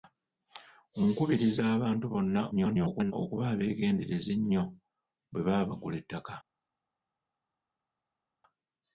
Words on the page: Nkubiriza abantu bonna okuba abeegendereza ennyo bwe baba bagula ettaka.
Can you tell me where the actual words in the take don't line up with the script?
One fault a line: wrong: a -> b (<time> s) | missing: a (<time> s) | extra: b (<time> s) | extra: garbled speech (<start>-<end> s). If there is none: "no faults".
extra: garbled speech (2.5-3.1 s)